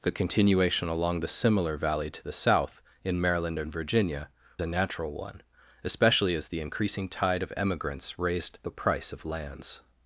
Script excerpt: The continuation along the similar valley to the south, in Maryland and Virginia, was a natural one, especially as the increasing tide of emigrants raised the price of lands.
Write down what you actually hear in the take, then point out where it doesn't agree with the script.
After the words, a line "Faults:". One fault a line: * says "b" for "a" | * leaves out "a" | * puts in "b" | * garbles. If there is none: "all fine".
The continuation along the similar valley to the south, in Maryland and Virginia, a natural one, especially as the increasing tide of emigrants raised the price of lands.
Faults:
* leaves out "was"